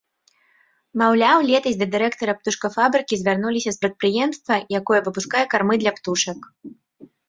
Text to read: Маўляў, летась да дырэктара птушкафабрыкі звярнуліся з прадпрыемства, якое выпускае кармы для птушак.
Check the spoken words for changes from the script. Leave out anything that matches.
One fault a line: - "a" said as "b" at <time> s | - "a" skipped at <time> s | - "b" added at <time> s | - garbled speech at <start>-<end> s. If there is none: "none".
none